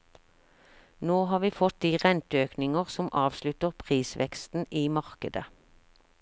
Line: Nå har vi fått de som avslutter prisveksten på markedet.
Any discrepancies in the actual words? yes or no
yes